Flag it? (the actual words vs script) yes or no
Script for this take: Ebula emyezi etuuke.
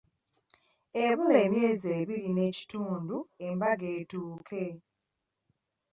yes